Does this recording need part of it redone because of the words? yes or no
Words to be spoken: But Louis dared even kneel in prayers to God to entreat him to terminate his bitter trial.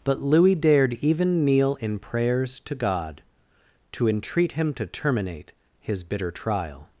no